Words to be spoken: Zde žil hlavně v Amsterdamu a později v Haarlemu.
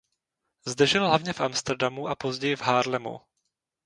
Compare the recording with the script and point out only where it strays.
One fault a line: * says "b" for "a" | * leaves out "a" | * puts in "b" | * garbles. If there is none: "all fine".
all fine